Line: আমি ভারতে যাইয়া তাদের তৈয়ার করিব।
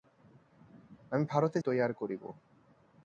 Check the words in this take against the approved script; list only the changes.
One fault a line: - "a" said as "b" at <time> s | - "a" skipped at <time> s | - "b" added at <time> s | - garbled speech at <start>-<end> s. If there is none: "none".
- "যাইয়া তাদের" skipped at 1.6 s